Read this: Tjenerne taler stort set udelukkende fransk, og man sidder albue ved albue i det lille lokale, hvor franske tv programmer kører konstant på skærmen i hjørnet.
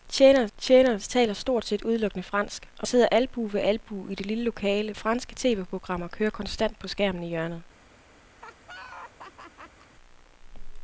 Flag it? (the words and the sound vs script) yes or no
yes